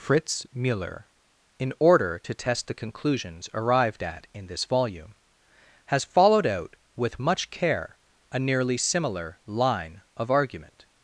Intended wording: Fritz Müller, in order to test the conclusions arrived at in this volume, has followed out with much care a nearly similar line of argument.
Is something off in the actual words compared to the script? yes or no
no